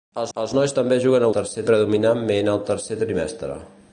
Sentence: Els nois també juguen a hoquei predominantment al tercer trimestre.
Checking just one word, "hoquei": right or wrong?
wrong